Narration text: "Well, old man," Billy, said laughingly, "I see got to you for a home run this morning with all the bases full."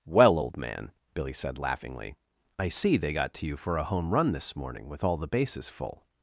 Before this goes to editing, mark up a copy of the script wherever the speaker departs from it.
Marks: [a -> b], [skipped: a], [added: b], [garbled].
"Well, old man," Billy, said laughingly, "I see [added: they] got to you for a home run this morning with all the bases full."